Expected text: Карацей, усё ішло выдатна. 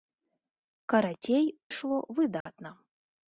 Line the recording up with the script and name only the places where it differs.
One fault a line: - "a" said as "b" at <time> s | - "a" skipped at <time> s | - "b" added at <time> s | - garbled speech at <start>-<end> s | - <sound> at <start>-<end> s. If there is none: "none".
- "усё" skipped at 1.4 s
- dropout at 2.4-2.5 s